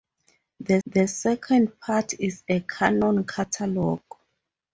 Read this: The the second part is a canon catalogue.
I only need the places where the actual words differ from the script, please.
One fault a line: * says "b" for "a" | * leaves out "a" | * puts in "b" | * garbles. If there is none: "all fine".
all fine